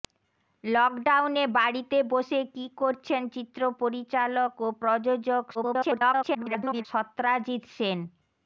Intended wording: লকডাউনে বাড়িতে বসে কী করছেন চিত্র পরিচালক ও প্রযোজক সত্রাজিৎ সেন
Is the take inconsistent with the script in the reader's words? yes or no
yes